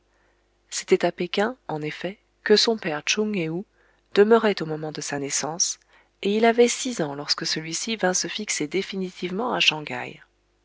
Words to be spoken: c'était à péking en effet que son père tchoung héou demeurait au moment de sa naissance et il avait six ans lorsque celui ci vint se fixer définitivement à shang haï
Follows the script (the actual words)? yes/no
yes